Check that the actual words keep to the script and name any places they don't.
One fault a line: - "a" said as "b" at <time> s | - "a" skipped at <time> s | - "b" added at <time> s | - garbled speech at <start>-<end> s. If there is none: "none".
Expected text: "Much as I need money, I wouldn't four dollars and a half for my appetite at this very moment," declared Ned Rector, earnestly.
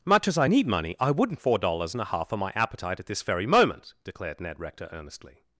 none